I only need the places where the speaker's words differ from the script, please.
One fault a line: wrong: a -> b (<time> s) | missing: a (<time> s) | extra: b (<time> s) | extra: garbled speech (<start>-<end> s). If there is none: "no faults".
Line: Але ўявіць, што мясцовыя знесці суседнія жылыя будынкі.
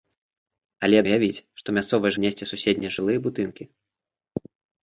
no faults